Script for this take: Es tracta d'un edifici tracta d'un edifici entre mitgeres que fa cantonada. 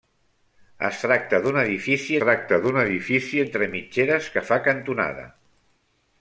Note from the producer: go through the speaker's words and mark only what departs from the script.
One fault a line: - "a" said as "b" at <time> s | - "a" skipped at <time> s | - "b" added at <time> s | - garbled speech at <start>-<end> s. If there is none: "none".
none